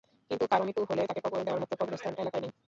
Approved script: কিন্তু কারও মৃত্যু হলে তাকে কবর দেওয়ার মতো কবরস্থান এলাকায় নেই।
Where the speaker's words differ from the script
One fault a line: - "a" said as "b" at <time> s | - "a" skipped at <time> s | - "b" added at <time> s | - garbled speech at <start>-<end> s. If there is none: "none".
none